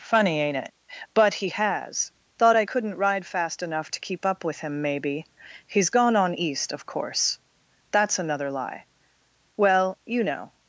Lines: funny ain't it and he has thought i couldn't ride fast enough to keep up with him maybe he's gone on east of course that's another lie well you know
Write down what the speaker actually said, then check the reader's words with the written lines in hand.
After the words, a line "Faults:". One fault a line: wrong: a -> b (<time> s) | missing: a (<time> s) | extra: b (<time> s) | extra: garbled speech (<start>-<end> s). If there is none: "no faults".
funny ain't it but he has thought i couldn't ride fast enough to keep up with him maybe he's gone on east of course that's another lie well you know
Faults:
wrong: and -> but (1.1 s)